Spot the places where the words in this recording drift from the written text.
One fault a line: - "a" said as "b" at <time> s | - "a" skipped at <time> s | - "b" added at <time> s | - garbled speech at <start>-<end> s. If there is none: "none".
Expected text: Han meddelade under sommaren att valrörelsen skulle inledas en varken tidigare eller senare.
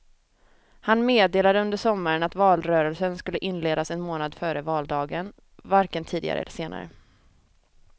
- "månad före valdagen" added at 4.0 s